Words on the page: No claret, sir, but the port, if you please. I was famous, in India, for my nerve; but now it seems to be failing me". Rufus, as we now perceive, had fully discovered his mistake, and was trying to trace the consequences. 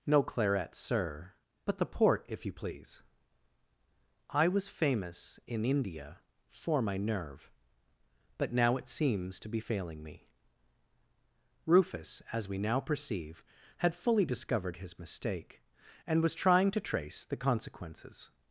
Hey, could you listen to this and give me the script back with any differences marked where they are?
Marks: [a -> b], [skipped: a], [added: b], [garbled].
No claret, sir, but the port, if you please. I was famous, in India, for my nerve; but now it seems to be failing me". Rufus, as we now perceive, had fully discovered his mistake, and was trying to trace the consequences.